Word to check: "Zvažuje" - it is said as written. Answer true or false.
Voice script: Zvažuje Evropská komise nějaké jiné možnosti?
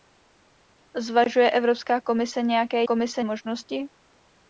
true